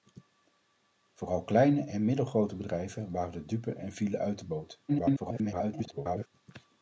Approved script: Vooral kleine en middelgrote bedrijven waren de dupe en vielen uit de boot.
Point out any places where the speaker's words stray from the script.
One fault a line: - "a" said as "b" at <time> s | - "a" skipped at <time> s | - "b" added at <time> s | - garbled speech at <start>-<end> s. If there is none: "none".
- garbled speech at 4.9-6.3 s